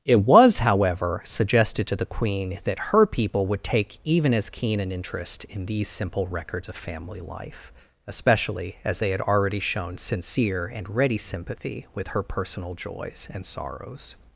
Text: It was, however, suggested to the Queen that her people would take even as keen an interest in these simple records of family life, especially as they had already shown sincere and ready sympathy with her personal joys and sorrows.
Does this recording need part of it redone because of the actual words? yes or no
no